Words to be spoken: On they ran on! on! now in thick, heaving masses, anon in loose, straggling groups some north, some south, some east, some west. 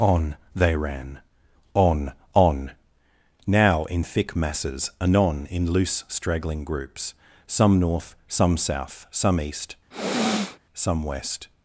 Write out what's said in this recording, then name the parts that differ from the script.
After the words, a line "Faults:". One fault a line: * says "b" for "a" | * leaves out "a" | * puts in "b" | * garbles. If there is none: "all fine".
On they ran on! on! now in thick, masses, anon in loose, straggling groups some north, some south, some east, some west.
Faults:
* leaves out "heaving"